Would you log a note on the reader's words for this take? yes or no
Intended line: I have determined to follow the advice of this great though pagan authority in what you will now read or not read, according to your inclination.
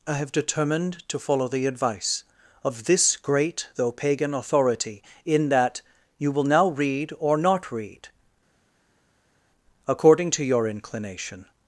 yes